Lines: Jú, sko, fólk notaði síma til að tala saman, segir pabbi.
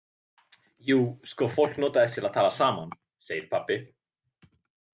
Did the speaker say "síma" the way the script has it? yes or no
no